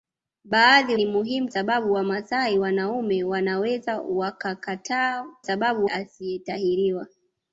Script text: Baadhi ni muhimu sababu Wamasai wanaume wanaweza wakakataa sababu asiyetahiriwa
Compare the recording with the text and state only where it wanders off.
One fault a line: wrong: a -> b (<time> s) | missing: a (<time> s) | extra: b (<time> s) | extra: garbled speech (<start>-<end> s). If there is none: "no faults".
no faults